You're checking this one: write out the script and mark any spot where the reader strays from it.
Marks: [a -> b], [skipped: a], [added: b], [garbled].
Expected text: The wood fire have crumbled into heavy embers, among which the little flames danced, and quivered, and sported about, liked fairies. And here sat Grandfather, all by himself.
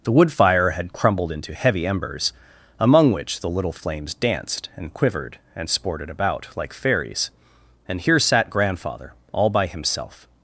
The wood fire [have -> had] crumbled into heavy embers, among which the little flames danced, and quivered, and sported about, [liked -> like] fairies. And here sat Grandfather, all by himself.